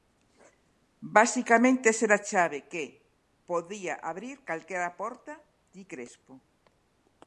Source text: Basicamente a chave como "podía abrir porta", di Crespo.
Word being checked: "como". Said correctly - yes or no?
no